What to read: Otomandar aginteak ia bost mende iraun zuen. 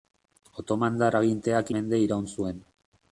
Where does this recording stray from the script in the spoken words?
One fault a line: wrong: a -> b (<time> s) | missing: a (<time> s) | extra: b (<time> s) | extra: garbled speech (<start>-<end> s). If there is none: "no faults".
missing: ia bost (1.7 s)